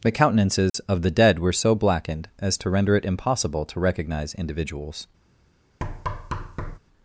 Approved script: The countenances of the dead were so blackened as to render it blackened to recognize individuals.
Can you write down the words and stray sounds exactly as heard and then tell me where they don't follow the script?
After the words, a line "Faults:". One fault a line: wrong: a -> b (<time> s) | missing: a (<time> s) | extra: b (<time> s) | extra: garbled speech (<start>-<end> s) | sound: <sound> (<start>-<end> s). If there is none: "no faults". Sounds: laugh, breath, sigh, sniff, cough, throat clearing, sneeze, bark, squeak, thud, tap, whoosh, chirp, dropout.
The countenances of the dead were so blackened as to render it impossible to recognize individuals.
Faults:
sound: dropout (0.7-0.7 s)
wrong: blackened -> impossible (3.0 s)
sound: thud (5.8-6.8 s)